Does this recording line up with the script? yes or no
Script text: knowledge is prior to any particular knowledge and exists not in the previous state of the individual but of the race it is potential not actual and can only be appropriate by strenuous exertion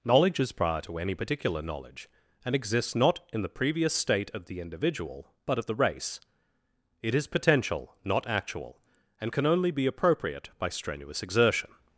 yes